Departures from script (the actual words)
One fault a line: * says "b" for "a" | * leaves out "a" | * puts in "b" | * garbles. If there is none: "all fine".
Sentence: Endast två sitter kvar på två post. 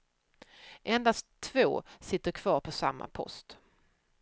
* says "samma" for "två"